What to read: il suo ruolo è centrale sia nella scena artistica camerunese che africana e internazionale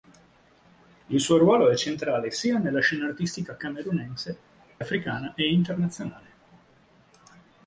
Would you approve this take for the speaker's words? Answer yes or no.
no